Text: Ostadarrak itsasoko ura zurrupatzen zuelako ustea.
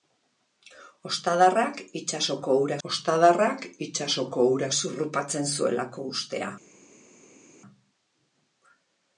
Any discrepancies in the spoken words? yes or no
yes